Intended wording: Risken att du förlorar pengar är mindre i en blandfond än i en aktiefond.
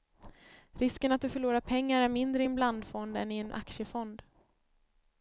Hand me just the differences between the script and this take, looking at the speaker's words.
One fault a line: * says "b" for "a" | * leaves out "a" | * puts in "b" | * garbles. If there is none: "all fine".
all fine